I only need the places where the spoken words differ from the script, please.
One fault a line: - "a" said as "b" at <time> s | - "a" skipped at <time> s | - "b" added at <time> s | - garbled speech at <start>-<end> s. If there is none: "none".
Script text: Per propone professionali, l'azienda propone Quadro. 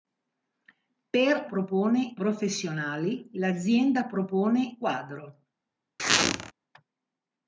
none